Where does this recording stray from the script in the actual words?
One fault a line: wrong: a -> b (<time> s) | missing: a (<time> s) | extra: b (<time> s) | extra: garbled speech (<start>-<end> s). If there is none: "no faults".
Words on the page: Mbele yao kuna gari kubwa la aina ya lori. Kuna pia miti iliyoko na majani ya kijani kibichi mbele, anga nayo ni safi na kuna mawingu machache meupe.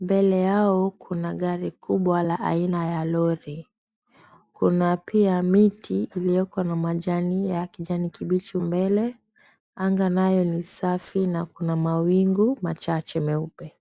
no faults